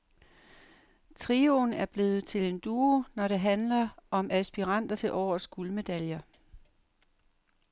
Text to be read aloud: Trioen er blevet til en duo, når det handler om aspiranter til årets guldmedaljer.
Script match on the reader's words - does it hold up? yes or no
yes